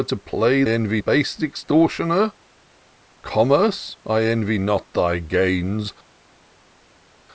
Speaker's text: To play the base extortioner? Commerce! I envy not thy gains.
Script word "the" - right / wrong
wrong